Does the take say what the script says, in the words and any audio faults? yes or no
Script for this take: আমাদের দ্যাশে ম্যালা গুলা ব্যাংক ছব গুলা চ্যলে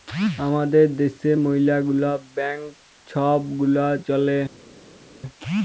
yes